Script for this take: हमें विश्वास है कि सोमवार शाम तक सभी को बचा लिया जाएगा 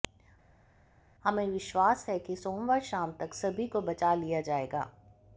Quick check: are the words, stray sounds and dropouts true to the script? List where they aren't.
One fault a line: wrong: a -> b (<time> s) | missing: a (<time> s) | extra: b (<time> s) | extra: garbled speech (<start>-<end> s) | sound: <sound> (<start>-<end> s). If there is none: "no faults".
no faults